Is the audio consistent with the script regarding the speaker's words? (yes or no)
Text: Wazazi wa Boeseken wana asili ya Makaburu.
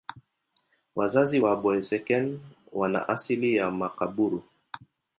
yes